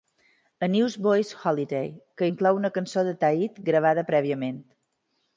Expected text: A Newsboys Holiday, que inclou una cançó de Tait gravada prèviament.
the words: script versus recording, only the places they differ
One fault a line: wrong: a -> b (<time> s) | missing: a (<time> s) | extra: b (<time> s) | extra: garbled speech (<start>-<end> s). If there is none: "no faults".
no faults